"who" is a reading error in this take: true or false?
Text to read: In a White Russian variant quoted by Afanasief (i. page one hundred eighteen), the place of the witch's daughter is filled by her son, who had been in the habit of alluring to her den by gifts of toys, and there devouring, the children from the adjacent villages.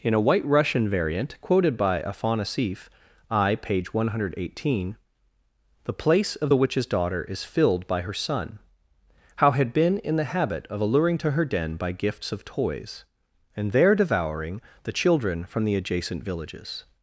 true